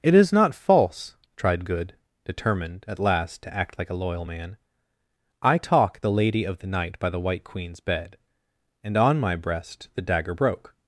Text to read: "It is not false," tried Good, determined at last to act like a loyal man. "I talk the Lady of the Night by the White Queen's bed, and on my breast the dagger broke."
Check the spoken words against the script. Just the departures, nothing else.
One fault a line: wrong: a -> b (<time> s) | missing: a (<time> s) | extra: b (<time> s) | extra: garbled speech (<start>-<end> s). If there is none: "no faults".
no faults